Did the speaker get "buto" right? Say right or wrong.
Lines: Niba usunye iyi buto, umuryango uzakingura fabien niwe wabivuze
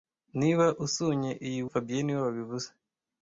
wrong